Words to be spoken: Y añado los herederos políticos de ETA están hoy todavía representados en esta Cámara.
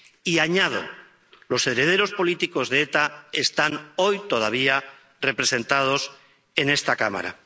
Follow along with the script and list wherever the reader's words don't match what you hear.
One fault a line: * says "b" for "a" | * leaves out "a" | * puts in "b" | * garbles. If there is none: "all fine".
all fine